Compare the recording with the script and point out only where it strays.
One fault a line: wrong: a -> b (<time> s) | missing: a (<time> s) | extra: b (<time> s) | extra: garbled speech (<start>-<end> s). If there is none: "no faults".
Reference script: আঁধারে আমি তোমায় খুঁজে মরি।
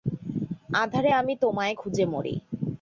no faults